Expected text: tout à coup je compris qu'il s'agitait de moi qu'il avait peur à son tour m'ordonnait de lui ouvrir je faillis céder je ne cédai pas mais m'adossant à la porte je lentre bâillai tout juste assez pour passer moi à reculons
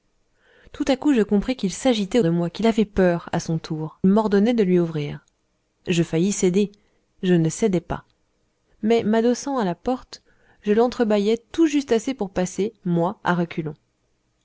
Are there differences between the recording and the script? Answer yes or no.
no